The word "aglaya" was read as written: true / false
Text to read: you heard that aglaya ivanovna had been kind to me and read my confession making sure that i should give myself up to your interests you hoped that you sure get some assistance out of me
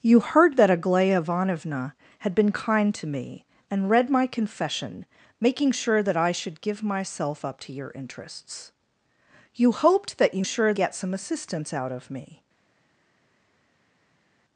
true